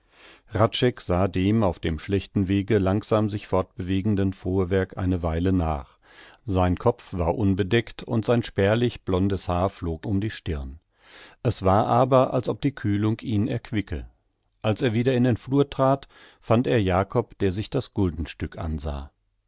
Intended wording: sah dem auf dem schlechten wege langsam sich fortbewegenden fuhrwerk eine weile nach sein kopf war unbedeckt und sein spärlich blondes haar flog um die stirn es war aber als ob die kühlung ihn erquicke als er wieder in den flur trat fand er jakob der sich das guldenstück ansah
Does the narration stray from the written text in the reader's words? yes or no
no